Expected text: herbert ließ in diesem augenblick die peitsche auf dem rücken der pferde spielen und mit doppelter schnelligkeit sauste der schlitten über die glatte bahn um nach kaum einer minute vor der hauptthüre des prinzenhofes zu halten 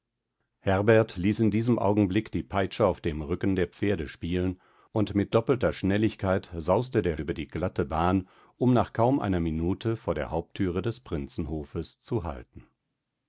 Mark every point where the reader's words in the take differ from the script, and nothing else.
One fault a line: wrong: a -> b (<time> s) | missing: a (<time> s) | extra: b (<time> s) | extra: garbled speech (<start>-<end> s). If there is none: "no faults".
missing: schlitten (7.2 s)